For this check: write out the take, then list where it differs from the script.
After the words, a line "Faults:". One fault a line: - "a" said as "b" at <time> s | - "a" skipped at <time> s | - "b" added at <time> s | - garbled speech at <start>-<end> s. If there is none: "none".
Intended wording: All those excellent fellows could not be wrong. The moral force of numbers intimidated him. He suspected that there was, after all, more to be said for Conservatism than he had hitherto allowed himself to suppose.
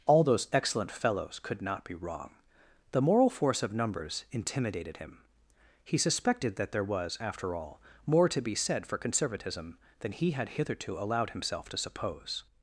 All those excellent fellows could not be wrong. The moral force of numbers intimidated him. He suspected that there was, after all, more to be said for Conservatism than he had hitherto allowed himself to suppose.
Faults:
none